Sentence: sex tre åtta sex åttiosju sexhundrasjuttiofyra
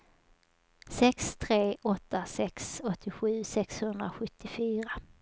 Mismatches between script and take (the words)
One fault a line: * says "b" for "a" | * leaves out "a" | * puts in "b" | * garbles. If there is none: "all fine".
all fine